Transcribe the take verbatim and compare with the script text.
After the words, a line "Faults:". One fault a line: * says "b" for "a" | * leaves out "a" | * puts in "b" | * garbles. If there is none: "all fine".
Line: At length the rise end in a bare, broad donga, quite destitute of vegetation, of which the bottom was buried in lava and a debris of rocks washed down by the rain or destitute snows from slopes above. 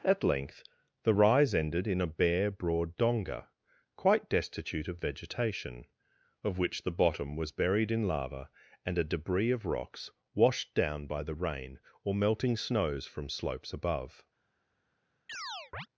At length the rise ended in a bare, broad donga, quite destitute of vegetation, of which the bottom was buried in lava and a debris of rocks washed down by the rain or melting snows from slopes above.
Faults:
* says "ended" for "end"
* says "melting" for "destitute"